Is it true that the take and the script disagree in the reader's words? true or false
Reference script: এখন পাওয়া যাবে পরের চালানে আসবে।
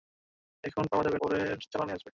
false